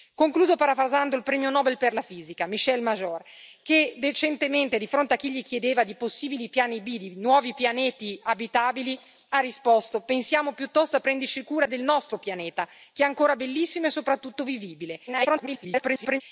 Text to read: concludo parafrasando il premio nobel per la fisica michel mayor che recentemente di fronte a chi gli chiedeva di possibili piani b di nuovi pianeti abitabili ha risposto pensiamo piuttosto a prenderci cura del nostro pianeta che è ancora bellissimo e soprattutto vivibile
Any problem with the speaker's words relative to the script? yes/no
yes